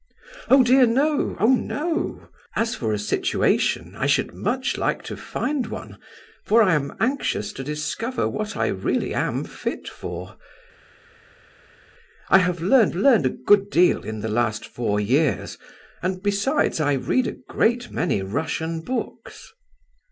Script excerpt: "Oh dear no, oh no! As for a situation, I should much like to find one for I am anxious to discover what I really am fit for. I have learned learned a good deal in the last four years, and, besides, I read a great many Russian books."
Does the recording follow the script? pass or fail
pass